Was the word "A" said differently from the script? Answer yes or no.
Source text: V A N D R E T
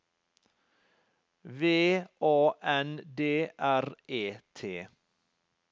no